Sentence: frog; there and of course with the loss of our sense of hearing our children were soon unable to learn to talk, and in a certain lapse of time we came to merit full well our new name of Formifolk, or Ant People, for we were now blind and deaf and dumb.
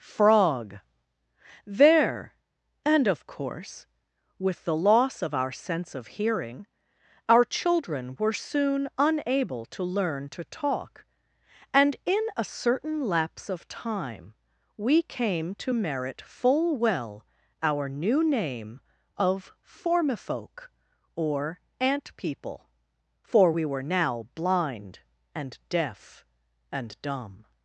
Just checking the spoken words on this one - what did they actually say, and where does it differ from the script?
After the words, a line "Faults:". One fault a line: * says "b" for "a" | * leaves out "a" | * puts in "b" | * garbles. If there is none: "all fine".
frog; there and of course with the loss of our sense of hearing our children were soon unable to learn to talk, and in a certain lapse of time we came to merit full well our new name of Formifolk, or Ant People, for we were now blind and deaf and dumb.
Faults:
all fine